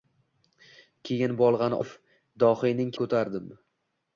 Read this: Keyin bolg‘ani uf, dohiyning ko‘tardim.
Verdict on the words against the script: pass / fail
pass